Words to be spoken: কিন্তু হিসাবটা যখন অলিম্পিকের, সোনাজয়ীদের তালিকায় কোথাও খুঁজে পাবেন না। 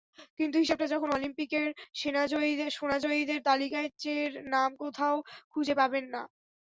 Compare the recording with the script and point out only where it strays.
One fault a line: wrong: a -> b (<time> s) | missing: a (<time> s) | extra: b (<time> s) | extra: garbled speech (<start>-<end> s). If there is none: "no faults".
extra: চের নাম (4.0 s)